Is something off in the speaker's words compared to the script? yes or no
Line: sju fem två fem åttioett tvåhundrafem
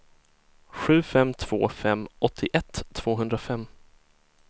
no